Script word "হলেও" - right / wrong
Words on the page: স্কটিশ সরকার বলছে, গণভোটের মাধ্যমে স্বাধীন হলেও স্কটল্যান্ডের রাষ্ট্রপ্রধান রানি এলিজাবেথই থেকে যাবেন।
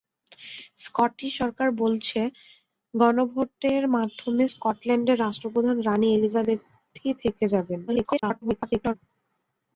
wrong